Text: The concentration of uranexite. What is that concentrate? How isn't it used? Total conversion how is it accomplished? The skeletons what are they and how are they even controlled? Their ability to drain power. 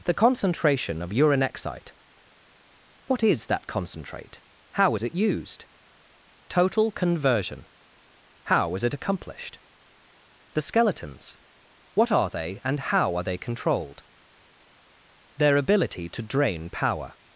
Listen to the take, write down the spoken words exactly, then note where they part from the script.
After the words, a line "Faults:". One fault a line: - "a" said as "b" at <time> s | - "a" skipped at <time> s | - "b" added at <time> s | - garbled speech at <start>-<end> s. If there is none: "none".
The concentration of uranexite. What is that concentrate? How is it used? Total conversion how is it accomplished? The skeletons what are they and how are they controlled? Their ability to drain power.
Faults:
- "isn't" said as "is" at 4.9 s
- "even" skipped at 13.4 s